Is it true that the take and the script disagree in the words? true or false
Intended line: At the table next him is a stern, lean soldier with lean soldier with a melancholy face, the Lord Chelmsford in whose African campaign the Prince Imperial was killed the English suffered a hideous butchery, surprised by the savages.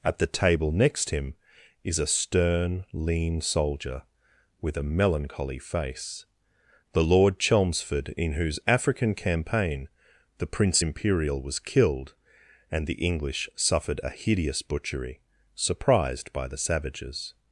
true